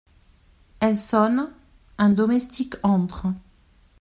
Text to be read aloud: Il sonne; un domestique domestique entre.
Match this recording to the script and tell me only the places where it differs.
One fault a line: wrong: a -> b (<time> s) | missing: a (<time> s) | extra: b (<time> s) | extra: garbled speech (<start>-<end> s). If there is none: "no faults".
wrong: Il -> Elle (0.8 s)
missing: domestique (2.7 s)